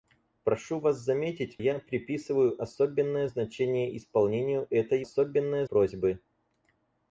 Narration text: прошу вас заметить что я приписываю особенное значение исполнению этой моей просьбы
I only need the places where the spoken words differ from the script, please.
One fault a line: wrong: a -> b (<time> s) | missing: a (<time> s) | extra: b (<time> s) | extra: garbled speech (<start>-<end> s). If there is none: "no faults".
missing: что (1.6 s)
wrong: моей -> особенное (5.0 s)